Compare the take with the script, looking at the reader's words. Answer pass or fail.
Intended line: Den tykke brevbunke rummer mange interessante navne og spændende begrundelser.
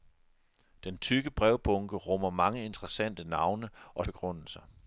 fail